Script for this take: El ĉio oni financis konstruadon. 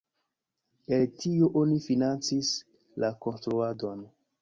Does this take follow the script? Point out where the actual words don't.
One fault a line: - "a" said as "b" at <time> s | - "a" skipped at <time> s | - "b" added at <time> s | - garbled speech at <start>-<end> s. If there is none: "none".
- "ĉio" said as "tio" at 1.2 s
- "la" added at 3.0 s